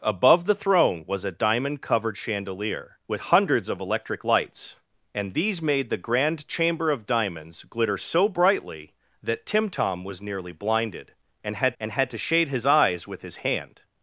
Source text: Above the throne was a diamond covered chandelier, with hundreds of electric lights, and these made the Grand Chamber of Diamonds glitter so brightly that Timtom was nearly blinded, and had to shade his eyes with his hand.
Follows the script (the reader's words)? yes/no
no